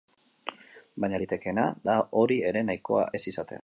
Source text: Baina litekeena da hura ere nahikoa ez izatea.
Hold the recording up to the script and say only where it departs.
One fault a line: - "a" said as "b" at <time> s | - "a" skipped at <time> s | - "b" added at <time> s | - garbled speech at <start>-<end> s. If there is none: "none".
- "hura" said as "hori" at 2.2 s